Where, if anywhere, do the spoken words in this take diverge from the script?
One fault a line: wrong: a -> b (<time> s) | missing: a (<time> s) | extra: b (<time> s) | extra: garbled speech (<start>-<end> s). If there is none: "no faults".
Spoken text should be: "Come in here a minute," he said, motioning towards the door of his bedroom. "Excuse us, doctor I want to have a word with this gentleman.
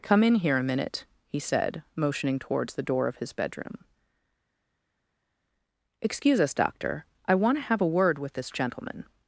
no faults